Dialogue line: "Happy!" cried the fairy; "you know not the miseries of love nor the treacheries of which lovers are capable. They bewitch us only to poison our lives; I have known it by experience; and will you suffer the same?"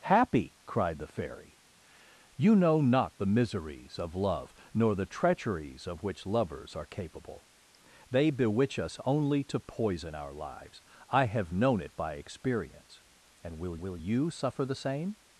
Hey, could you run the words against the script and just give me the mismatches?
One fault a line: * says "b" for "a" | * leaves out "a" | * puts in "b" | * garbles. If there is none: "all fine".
* puts in "will"